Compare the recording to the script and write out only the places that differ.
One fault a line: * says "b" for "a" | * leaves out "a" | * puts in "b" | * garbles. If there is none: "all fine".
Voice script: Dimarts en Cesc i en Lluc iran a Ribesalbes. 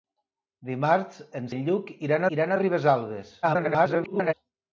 * leaves out "Cesc"
* puts in "iran"
* garbles